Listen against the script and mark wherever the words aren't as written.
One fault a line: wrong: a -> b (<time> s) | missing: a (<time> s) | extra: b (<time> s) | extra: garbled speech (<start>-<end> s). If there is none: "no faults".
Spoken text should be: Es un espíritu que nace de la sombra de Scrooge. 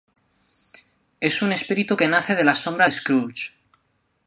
no faults